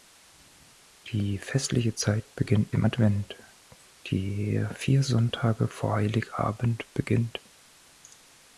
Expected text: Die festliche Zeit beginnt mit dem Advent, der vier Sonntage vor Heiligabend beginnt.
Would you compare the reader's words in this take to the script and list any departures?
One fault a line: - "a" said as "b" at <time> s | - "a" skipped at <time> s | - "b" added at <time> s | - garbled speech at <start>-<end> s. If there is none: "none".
- "mit" skipped at 2.8 s